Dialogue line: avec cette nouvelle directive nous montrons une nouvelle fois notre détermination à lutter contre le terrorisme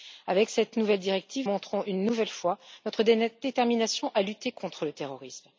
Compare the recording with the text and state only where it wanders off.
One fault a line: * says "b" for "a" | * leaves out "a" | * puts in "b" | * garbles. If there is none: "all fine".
* leaves out "nous"